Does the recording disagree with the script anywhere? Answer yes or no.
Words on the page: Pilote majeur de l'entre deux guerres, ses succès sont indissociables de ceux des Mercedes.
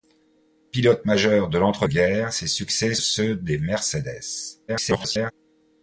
yes